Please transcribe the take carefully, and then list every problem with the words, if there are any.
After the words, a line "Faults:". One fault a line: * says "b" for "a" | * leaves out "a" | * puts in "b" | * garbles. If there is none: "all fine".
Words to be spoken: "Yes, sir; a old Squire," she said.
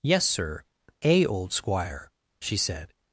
"Yes, sir; a old Squire," she said.
Faults:
all fine